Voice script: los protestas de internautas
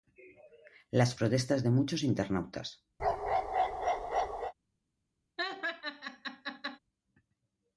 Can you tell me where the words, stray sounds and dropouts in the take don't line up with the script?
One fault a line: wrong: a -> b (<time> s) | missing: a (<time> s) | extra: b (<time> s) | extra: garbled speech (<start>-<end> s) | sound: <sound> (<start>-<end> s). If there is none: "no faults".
wrong: los -> las (0.9 s)
extra: muchos (1.7 s)
sound: bark (3.0-4.5 s)
sound: laugh (5.4-6.8 s)